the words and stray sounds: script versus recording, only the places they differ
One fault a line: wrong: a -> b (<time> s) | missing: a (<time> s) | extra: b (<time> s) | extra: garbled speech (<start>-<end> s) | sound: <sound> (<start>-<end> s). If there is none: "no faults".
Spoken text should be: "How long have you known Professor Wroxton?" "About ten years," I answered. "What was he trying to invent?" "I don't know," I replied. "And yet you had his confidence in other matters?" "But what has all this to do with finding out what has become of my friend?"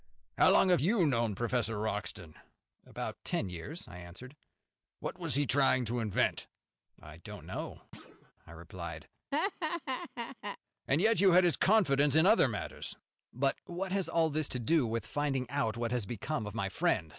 sound: thud (7.9-8.3 s)
sound: laugh (9.3-10.6 s)